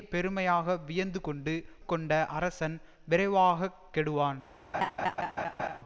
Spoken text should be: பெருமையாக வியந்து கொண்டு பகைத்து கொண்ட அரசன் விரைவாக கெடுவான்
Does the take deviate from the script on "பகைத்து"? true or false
true